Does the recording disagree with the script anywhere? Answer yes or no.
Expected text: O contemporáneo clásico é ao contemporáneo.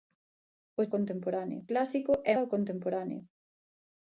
no